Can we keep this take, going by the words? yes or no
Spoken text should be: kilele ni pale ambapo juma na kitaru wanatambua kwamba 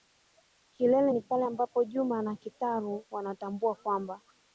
yes